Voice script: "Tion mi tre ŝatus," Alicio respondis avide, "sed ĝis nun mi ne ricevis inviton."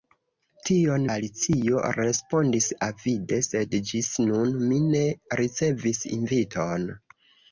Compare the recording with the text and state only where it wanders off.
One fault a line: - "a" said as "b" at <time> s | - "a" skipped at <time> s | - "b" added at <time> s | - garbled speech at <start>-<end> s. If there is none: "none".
- "mi tre ŝatus" skipped at 1.0 s